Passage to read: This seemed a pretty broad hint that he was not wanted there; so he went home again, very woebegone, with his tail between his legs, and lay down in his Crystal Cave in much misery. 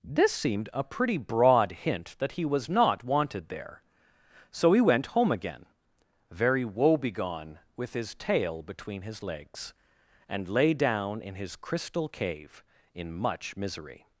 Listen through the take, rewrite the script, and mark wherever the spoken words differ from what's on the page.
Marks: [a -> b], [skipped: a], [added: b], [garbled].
This seemed a pretty broad hint that he was not wanted there; so he went home again, very woebegone, with his tail between his legs, and lay down in his Crystal Cave in much misery.